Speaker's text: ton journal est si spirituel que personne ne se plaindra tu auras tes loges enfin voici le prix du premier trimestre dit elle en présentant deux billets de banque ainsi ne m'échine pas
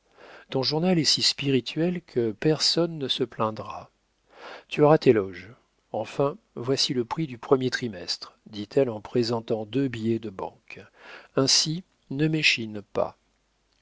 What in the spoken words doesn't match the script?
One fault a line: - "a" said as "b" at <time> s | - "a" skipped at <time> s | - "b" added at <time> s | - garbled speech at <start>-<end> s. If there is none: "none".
none